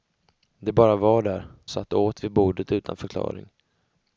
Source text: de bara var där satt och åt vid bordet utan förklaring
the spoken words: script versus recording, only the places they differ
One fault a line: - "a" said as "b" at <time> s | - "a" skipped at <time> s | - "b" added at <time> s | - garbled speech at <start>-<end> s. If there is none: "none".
none